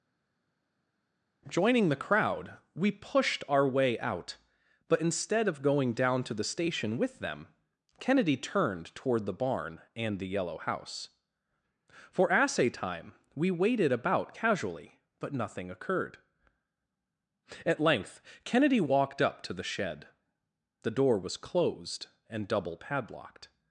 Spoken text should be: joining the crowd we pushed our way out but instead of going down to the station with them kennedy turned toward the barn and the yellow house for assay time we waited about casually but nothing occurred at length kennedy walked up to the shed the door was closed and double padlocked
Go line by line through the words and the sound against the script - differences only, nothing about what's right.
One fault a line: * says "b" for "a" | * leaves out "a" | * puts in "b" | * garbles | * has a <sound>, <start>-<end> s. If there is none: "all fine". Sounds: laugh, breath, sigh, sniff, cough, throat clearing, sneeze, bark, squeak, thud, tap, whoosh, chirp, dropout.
all fine